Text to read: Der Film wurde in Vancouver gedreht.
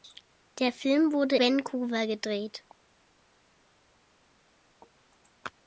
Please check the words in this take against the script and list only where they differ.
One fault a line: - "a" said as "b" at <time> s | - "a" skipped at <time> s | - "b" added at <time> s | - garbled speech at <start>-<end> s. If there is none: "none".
- "in" skipped at 1.4 s